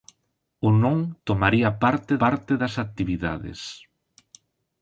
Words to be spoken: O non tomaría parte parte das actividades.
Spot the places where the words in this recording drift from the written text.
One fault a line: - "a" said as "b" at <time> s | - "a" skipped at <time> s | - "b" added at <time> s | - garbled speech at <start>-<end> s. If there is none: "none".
none